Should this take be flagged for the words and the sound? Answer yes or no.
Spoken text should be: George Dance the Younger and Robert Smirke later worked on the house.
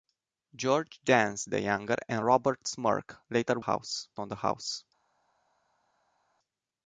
yes